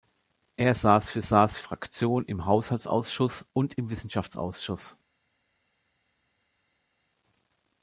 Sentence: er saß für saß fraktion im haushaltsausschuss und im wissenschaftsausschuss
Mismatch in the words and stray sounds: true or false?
false